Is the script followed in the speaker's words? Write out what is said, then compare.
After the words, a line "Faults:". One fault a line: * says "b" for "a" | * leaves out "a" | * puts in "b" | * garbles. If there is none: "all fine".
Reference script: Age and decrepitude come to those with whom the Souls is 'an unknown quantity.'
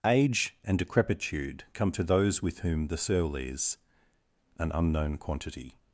Age and decrepitude come to those with whom the Soul is 'an unknown quantity.'
Faults:
* says "Soul" for "Souls"